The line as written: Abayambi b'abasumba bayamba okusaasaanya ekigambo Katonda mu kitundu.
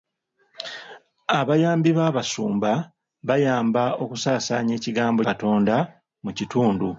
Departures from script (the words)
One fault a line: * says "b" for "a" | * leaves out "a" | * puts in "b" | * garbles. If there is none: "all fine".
all fine